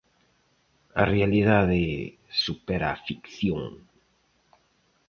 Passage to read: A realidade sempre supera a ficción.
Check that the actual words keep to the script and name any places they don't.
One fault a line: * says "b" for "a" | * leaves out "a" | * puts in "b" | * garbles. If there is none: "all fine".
* leaves out "sempre"